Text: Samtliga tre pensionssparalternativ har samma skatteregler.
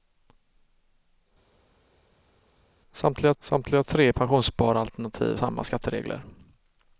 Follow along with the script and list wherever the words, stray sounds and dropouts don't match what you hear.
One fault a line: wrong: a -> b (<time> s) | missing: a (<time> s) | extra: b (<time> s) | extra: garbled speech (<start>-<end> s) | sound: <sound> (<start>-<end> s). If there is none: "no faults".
extra: samtliga (3.4 s)
missing: har (5.4 s)